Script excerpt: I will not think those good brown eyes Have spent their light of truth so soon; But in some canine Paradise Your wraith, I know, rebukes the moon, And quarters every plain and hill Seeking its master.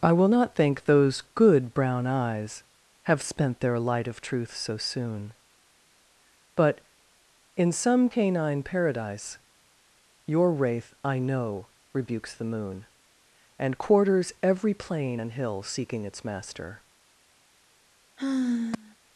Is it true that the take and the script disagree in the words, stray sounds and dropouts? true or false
true